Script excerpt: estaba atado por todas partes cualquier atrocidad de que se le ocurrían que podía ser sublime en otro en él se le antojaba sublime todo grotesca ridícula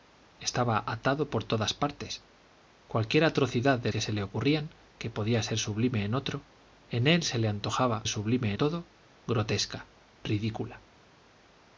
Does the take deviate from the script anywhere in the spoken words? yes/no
no